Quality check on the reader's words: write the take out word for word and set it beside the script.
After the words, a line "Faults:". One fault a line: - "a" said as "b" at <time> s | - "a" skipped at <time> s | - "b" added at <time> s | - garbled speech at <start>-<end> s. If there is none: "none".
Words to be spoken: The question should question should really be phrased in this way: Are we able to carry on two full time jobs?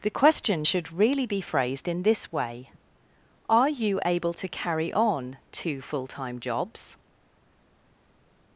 The question should really be phrased in this way: Are you able to carry on two full time jobs?
Faults:
- "question should" skipped at 0.9 s
- "we" said as "you" at 3.7 s